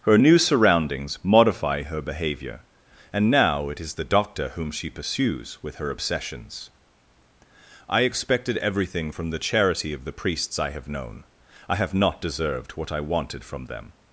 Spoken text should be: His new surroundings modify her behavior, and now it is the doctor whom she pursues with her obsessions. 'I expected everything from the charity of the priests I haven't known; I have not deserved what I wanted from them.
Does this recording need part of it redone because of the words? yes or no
yes